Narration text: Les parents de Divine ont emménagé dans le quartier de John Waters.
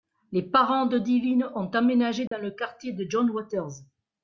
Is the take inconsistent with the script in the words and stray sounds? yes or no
yes